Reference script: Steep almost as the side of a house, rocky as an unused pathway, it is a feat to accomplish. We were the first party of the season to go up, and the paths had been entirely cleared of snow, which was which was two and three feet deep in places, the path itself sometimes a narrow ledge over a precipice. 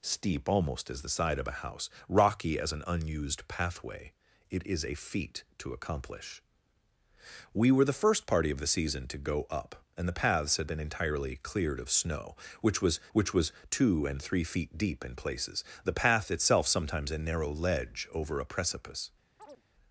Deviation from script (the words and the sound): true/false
true